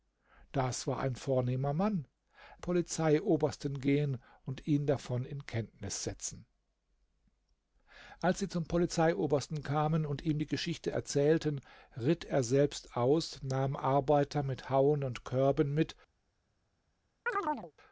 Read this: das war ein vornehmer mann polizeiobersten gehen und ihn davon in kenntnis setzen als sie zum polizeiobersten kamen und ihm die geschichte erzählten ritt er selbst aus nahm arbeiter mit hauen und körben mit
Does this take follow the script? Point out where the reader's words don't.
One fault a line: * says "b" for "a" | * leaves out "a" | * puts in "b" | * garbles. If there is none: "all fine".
all fine